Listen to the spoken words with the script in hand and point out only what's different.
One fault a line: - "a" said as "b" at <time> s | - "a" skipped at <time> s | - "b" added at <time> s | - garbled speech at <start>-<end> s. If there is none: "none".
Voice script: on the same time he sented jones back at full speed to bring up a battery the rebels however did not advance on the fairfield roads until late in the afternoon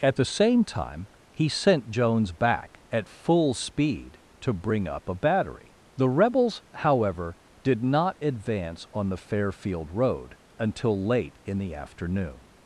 - "on" said as "at" at 0.0 s
- "sented" said as "sent" at 1.5 s
- "roads" said as "road" at 9.9 s